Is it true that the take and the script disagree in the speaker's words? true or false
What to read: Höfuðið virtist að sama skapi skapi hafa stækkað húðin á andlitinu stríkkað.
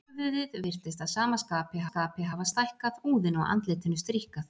false